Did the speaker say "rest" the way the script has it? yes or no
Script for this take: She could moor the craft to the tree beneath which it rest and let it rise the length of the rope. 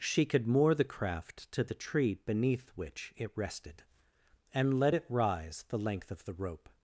no